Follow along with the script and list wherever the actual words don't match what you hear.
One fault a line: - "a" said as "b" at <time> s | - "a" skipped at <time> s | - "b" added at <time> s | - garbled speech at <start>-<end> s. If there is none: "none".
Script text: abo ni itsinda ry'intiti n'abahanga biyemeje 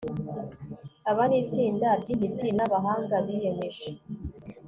- "abo" said as "aba" at 1.1 s